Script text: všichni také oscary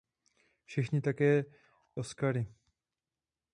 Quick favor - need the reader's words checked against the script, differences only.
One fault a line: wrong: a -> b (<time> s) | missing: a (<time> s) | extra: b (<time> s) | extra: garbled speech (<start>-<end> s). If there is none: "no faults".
no faults